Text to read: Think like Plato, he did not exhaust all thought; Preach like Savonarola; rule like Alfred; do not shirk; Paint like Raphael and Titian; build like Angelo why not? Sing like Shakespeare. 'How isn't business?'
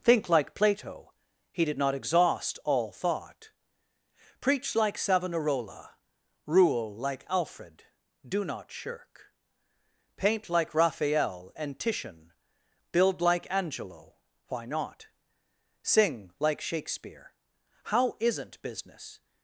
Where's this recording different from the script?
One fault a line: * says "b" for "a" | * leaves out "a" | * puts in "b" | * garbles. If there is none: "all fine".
all fine